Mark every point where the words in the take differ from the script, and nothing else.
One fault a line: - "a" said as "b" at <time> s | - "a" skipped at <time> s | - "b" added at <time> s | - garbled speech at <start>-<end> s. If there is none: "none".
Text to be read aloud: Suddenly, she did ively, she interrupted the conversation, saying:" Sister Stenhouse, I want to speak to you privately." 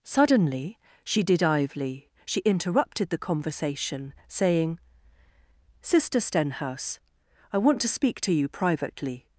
none